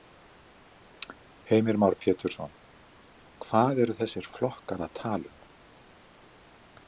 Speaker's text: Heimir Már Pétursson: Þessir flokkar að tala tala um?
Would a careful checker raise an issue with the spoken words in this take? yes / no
yes